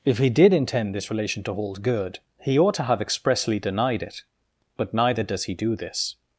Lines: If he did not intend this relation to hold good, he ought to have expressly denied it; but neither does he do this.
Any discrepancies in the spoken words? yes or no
yes